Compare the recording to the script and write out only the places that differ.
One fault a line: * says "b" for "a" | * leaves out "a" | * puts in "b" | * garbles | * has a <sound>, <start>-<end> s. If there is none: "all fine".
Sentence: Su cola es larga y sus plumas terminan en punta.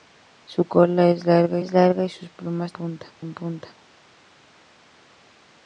* puts in "es larga"
* says "punta" for "terminan"